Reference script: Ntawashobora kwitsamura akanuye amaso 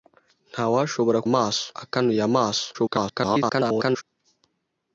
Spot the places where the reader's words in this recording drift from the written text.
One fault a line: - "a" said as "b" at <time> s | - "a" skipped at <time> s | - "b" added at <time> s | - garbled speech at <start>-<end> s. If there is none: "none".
- "kwitsamura" said as "amaso" at 1.3 s
- garbled speech at 2.7-4.0 s